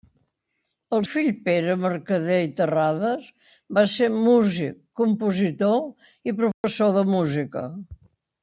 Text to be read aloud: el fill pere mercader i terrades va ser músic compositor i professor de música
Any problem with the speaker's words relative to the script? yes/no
no